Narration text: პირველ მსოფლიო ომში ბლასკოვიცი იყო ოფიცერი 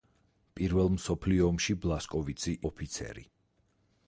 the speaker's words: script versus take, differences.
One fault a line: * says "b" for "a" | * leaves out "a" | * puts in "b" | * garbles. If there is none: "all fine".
* leaves out "იყო"